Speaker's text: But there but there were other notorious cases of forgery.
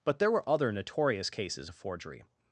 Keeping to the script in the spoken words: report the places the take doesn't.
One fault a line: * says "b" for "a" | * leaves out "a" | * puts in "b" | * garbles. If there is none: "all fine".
* leaves out "but there"